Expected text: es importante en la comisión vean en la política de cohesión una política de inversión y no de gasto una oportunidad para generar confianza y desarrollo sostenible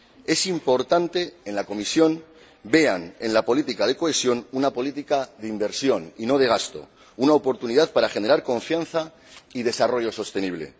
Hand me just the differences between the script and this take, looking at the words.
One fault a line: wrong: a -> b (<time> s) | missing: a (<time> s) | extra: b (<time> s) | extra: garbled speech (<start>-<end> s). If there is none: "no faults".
no faults